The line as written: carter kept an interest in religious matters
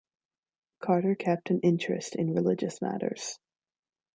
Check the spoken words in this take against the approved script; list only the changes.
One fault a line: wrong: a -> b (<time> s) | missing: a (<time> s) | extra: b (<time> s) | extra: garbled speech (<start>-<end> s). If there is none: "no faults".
no faults